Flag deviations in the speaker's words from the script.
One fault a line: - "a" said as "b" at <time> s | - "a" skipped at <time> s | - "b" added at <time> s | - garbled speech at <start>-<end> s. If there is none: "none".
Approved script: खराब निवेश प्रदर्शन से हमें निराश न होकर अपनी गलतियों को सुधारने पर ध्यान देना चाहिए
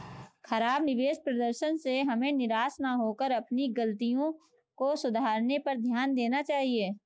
none